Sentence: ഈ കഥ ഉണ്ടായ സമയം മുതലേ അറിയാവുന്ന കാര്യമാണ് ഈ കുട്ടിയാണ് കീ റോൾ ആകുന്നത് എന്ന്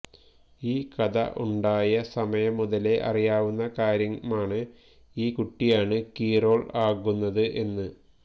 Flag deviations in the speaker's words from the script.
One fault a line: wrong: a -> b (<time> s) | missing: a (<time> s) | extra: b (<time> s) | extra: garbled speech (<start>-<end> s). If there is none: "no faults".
no faults